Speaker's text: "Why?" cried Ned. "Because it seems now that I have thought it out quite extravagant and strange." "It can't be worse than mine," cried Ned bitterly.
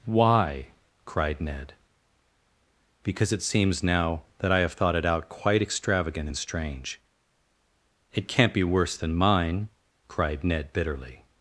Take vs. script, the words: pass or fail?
pass